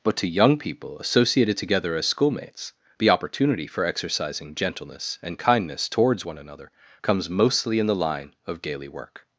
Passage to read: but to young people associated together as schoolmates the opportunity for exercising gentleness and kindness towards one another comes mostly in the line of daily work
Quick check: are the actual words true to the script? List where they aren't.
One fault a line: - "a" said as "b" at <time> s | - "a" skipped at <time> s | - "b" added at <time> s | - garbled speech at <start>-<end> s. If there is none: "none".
none